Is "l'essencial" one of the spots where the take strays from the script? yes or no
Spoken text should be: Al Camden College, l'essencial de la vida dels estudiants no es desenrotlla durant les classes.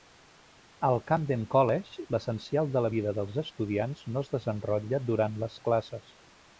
no